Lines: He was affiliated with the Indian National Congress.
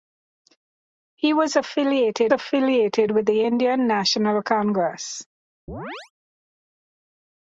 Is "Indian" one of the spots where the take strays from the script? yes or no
no